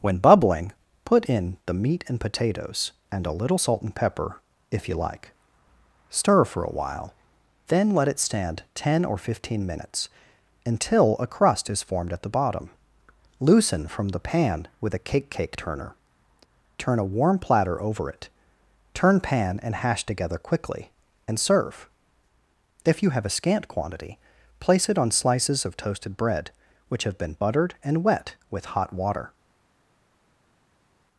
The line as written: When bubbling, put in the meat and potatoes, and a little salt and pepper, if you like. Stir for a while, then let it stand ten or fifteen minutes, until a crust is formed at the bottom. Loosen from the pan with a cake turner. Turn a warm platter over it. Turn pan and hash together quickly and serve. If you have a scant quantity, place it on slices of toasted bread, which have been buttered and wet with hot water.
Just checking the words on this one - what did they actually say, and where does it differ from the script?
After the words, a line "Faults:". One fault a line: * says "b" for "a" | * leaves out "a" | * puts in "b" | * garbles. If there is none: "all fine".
When bubbling, put in the meat and potatoes, and a little salt and pepper, if you like. Stir for a while, then let it stand ten or fifteen minutes, until a crust is formed at the bottom. Loosen from the pan with a cake cake turner. Turn a warm platter over it. Turn pan and hash together quickly and serve. If you have a scant quantity, place it on slices of toasted bread, which have been buttered and wet with hot water.
Faults:
* puts in "cake"